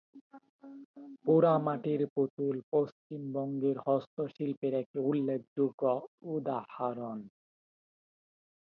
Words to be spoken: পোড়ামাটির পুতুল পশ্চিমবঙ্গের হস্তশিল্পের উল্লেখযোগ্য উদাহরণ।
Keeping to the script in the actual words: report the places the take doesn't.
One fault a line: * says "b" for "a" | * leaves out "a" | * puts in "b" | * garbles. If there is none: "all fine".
* puts in "একটি"